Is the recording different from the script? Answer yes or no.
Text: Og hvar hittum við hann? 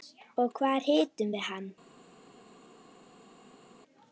no